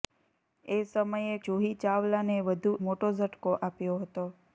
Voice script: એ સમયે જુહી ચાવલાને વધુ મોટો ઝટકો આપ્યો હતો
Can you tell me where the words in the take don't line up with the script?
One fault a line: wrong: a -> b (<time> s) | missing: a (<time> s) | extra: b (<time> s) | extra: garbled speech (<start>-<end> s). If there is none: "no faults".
no faults